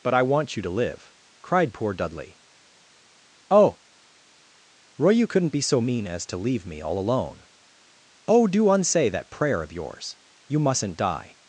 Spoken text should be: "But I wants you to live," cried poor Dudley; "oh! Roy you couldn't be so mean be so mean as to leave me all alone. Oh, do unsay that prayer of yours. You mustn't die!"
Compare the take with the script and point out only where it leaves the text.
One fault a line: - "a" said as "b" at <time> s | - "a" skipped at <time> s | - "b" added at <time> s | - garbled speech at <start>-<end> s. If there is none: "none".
- "wants" said as "want" at 0.2 s
- "be so mean" skipped at 6.1 s